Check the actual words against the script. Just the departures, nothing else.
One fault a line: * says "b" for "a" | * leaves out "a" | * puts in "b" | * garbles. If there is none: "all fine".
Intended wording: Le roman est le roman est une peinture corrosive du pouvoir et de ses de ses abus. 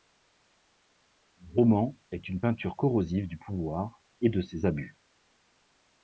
* leaves out "le roman est"
* leaves out "de ses"